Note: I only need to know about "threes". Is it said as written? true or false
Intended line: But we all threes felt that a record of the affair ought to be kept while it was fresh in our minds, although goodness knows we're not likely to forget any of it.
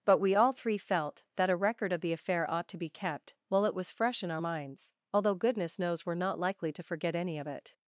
false